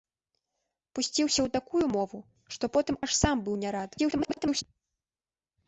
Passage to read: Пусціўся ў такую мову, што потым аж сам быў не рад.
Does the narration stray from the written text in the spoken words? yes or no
yes